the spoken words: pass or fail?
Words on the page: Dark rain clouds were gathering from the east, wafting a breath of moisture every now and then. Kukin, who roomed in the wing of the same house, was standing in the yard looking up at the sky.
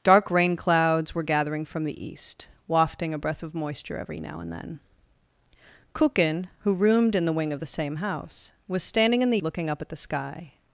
fail